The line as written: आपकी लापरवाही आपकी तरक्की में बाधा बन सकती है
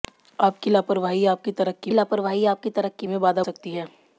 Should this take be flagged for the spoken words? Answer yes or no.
yes